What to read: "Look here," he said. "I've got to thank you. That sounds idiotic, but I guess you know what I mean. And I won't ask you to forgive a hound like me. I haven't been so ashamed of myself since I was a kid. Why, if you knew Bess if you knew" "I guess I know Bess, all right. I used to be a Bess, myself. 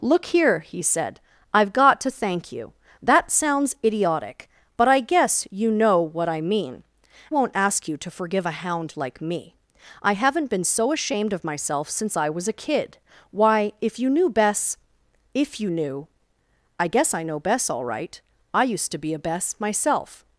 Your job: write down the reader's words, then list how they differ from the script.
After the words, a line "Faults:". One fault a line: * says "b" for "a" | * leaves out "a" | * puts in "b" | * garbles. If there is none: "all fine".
"Look here," he said. "I've got to thank you. That sounds idiotic, but I guess you know what I mean. Won't ask you to forgive a hound like me. I haven't been so ashamed of myself since I was a kid. Why, if you knew Bess if you knew" "I guess I know Bess, all right. I used to be a Bess, myself.
Faults:
* leaves out "And I"